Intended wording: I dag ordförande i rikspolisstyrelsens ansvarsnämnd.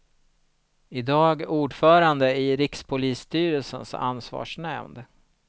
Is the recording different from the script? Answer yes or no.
no